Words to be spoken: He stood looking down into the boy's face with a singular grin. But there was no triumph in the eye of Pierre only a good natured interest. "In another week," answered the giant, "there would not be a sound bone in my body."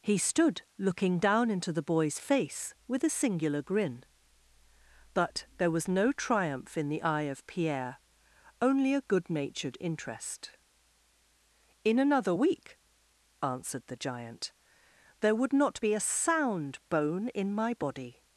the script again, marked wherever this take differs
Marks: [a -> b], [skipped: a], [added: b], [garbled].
He stood looking down into the boy's face with a singular grin. But there was no triumph in the eye of Pierre only a good natured interest. "In another week," answered the giant, "there would not be a sound bone in my body."